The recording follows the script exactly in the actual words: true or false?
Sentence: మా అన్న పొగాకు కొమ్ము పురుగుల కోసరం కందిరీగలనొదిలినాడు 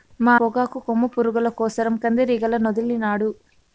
false